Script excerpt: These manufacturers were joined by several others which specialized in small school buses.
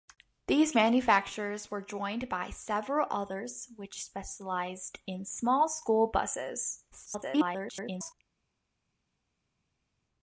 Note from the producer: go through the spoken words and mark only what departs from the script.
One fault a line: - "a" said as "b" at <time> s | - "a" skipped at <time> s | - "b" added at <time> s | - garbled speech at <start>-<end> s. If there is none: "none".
- garbled speech at 6.9-8.1 s